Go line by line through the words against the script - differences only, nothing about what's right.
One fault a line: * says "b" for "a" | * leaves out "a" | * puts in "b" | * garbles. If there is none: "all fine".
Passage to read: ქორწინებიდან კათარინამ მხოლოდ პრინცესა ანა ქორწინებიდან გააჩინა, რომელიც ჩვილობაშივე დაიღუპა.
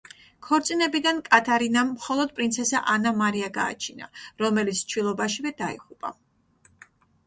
* says "მარია" for "ქორწინებიდან"